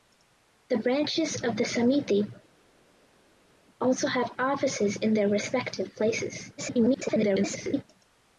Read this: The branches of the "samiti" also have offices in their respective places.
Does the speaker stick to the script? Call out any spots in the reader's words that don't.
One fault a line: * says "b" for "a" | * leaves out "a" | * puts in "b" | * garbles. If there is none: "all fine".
* garbles